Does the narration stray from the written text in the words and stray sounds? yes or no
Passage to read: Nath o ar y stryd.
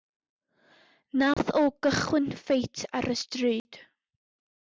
yes